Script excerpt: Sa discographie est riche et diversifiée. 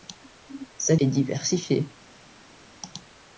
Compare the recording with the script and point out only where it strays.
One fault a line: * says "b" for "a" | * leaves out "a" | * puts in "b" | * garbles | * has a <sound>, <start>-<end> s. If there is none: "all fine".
* leaves out "discographie est riche"